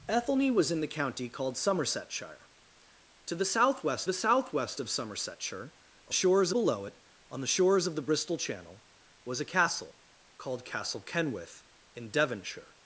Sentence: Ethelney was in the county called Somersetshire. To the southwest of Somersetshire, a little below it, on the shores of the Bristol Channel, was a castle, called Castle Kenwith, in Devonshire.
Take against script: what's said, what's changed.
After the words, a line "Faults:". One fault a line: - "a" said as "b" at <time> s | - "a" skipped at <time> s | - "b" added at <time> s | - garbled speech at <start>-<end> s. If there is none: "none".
Ethelney was in the county called Somersetshire. To the southwest the southwest of Somersetshire, a shores below it, on the shores of the Bristol Channel, was a castle, called Castle Kenwith, in Devonshire.
Faults:
- "the southwest" added at 4.0 s
- "little" said as "shores" at 6.1 s